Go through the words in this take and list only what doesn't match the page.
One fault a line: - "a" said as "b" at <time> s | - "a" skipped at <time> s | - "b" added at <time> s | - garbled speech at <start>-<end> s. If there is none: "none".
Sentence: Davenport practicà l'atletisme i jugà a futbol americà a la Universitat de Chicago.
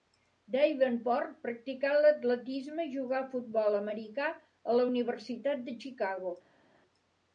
none